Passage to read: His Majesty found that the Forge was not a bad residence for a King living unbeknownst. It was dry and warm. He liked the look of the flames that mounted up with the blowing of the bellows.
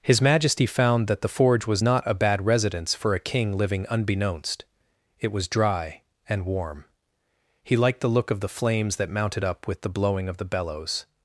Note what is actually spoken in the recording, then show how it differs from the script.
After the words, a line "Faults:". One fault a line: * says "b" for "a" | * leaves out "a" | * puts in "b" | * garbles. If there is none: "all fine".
His Majesty found that the Forge was not a bad residence for a King living unbeknownst. It was dry and warm. He liked the look of the flames that mounted up with the blowing of the bellows.
Faults:
all fine